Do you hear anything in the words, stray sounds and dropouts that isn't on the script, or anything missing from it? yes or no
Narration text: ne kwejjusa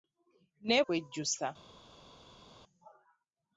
no